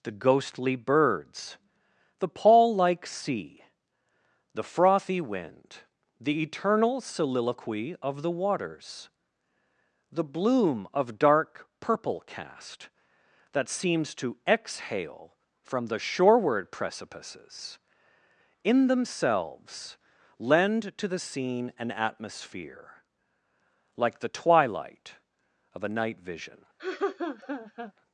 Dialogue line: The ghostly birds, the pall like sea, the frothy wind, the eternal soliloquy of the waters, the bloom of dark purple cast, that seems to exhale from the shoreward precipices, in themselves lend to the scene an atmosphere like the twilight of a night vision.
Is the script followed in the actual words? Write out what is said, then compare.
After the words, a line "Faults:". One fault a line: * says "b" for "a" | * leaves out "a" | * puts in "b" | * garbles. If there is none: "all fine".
The ghostly birds, the pall like sea, the frothy wind, the eternal soliloquy of the waters, the bloom of dark purple cast, that seems to exhale from the shoreward precipices, in themselves lend to the scene an atmosphere like the twilight of a night vision.
Faults:
all fine